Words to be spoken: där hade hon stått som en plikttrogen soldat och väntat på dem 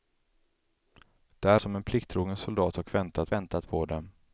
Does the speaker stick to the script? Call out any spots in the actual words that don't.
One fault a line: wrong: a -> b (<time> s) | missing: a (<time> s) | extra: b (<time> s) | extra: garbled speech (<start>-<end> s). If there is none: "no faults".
missing: hade hon stått (1.6 s)
extra: väntat (3.3 s)